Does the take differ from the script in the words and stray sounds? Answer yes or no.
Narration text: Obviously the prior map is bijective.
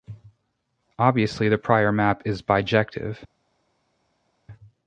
no